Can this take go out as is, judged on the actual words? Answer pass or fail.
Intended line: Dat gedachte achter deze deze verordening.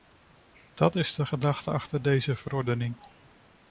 fail